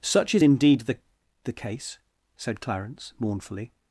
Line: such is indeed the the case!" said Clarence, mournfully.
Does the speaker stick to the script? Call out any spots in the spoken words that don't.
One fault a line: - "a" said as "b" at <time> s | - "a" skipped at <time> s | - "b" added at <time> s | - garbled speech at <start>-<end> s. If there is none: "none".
none